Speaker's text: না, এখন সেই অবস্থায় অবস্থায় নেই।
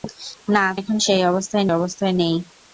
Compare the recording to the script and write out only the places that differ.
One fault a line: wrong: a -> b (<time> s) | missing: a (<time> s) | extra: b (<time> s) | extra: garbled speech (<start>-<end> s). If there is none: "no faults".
no faults